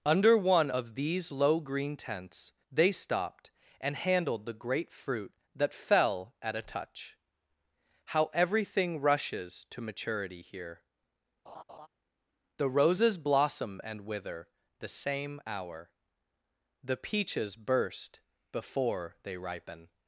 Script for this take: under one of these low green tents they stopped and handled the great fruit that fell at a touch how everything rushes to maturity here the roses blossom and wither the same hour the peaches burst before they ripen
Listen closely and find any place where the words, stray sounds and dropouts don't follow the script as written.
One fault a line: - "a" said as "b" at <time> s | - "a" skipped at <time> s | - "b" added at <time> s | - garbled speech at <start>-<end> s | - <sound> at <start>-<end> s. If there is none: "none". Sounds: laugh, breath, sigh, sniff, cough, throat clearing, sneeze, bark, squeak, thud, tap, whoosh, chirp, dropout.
- laugh at 11.5-11.9 s